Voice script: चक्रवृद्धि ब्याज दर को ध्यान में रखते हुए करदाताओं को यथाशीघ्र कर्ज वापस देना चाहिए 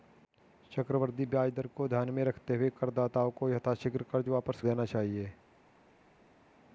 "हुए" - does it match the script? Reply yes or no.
yes